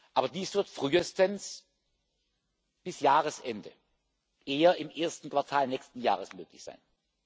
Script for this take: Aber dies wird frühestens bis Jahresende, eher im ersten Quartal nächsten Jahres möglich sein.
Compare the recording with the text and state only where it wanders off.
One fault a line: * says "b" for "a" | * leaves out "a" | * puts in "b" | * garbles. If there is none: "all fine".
all fine